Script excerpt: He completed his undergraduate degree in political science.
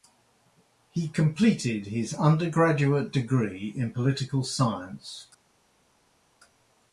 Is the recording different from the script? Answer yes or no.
no